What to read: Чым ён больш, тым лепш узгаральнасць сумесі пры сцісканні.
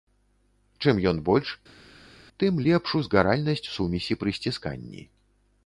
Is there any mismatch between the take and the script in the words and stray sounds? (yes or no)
no